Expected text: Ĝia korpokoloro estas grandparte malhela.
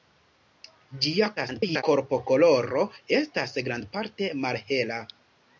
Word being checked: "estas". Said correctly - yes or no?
yes